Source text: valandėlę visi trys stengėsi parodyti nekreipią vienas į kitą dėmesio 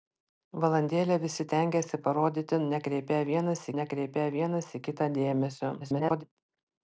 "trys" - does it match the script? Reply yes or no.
no